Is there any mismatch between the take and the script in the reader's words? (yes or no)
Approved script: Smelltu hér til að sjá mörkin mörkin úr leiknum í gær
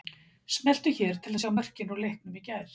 yes